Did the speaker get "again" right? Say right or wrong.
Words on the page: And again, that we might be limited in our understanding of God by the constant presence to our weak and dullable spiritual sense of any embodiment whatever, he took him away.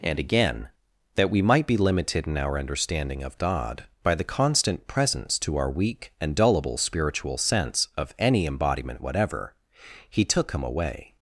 right